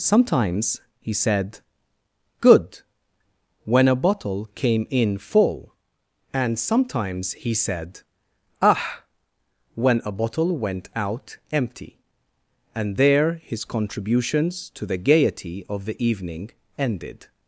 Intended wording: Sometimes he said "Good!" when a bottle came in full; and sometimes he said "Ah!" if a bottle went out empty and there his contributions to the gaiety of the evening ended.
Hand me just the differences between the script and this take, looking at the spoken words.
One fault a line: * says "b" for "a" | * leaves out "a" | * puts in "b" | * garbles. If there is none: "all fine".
* says "when" for "if"